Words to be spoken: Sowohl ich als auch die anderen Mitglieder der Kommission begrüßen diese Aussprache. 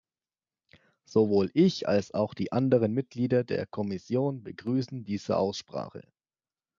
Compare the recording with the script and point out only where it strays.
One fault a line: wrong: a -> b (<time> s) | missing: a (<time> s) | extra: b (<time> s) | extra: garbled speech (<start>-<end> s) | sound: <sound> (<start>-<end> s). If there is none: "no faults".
no faults